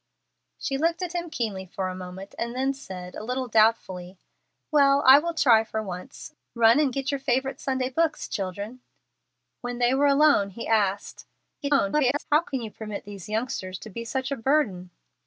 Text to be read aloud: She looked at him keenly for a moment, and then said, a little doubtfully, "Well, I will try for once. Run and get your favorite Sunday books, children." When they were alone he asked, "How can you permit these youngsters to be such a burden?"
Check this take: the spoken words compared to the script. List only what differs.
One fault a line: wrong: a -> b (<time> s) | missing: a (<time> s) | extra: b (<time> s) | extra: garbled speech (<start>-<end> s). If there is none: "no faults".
extra: garbled speech (11.6-12.2 s)